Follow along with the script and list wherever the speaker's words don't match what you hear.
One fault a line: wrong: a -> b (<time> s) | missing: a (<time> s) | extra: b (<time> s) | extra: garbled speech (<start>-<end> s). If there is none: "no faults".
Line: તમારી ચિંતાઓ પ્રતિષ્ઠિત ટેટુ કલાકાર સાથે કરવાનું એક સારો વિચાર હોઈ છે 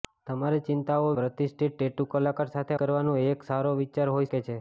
no faults